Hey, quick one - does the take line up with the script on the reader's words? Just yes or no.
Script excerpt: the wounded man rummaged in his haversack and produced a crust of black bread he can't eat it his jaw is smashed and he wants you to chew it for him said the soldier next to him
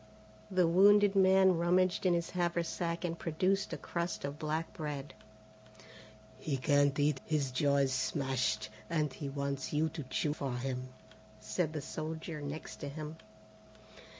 no